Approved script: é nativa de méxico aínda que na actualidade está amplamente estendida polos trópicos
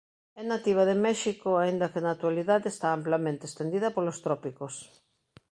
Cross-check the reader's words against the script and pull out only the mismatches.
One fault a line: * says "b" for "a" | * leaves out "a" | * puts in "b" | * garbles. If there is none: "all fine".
all fine